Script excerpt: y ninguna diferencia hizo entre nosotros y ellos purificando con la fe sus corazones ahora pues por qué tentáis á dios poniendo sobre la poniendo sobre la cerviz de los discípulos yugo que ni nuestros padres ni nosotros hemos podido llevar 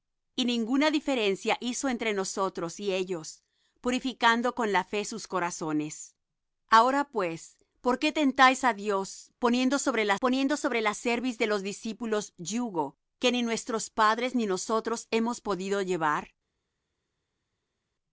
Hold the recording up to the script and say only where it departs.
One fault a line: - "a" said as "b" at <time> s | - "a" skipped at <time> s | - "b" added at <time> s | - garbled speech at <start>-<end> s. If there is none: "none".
none